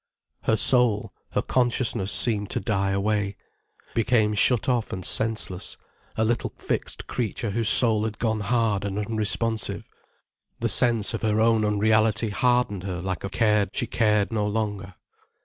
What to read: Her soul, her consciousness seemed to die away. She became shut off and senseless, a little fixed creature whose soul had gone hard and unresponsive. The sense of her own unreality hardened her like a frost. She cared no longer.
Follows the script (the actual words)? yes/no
no